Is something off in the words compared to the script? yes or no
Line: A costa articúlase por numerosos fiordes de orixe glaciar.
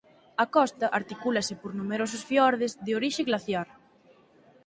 no